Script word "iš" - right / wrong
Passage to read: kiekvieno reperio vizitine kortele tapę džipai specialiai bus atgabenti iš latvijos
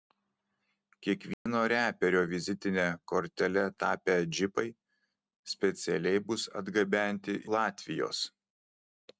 wrong